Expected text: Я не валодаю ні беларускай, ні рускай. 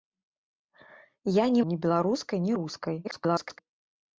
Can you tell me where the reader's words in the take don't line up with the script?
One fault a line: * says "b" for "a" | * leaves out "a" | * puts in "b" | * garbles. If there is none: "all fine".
* leaves out "валодаю"
* garbles